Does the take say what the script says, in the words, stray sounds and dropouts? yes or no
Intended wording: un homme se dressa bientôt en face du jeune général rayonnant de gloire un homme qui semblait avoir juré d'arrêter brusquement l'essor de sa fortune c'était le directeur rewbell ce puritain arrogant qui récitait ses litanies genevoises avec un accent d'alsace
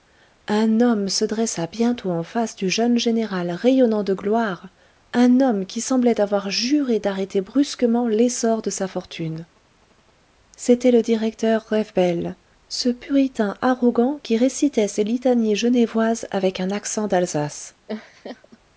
no